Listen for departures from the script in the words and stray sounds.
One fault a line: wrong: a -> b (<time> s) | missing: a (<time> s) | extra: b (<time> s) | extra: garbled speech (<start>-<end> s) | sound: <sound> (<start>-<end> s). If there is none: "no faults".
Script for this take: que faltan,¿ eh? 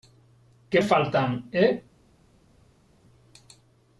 no faults